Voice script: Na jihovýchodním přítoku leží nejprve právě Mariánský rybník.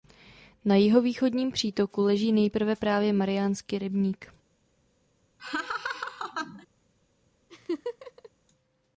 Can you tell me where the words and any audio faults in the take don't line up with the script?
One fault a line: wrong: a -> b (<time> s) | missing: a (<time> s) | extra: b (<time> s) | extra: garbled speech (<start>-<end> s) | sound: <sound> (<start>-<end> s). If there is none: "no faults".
sound: laugh (5.4-6.7 s)
sound: laugh (7.5-8.3 s)